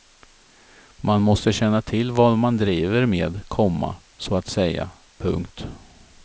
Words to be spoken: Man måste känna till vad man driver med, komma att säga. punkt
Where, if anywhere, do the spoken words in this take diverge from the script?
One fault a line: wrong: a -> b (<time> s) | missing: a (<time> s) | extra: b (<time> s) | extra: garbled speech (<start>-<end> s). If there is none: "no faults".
extra: så (4.2 s)